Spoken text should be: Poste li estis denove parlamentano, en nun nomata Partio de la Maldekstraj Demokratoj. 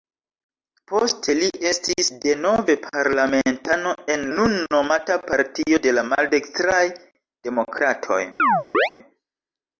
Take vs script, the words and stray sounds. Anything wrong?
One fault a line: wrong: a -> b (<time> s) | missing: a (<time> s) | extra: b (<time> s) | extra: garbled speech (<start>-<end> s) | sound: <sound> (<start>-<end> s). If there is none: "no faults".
sound: chirp (8.4-8.9 s)